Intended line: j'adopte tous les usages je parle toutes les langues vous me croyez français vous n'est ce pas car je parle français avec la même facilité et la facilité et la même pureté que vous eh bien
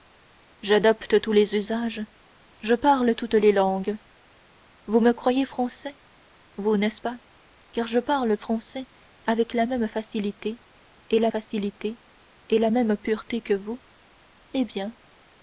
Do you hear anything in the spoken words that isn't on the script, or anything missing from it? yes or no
no